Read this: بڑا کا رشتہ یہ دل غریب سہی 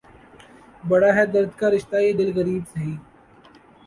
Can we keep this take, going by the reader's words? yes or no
no